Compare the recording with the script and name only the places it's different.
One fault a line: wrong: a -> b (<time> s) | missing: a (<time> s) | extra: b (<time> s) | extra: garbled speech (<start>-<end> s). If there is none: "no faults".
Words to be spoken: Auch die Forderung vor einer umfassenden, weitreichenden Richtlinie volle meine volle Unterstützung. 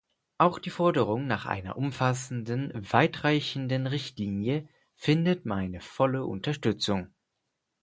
wrong: vor -> nach (1.3 s)
wrong: volle -> findet (4.9 s)